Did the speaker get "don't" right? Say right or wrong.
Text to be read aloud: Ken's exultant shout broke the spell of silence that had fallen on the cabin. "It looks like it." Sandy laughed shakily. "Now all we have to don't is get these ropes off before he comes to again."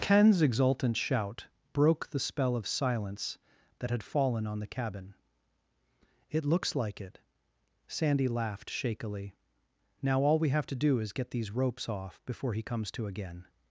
wrong